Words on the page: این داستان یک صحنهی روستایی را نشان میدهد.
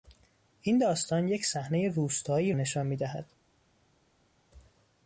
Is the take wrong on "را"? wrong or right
wrong